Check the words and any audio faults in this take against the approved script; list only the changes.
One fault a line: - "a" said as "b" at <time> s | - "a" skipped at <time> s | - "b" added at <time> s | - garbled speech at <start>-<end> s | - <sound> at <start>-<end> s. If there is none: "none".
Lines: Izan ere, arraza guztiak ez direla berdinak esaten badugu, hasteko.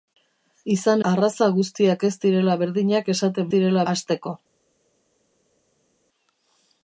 - "ere" skipped at 1.0 s
- "badugu" said as "direla" at 3.5 s